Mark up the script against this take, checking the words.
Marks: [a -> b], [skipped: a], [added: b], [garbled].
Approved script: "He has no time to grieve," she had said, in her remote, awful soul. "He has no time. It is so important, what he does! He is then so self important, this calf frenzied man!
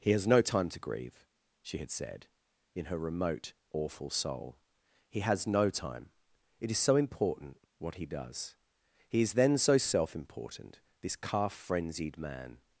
"He has no time to grieve," she had said, in her remote, awful soul. "He has no time. It is so important, what he does! He is then so self important, this calf frenzied man!